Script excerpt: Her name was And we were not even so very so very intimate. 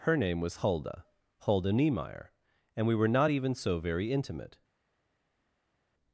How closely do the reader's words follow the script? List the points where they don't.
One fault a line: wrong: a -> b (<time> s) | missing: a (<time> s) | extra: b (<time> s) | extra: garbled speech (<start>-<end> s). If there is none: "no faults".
extra: Hulda Hulda Niemeyer (0.6 s)
missing: so very (4.1 s)